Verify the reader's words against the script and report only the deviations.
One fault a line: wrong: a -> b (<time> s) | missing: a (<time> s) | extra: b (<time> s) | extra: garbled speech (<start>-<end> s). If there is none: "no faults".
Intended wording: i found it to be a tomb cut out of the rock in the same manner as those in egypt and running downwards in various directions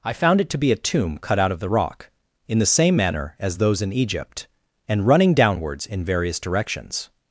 no faults